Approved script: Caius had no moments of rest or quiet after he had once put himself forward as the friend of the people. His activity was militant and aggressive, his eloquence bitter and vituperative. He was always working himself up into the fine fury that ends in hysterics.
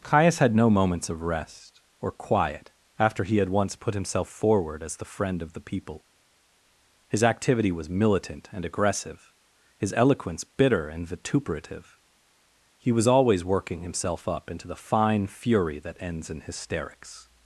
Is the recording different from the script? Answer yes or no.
no